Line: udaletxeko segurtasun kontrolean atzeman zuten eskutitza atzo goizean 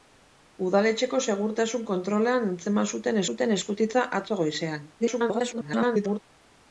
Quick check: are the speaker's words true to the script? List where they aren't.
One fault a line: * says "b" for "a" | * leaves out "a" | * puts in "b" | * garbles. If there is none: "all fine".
* puts in "zuten"
* garbles